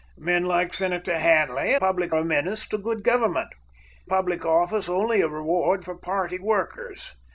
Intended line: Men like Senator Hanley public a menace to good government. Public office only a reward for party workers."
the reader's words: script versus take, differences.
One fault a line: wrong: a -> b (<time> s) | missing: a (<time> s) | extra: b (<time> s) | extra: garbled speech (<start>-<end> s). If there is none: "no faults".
no faults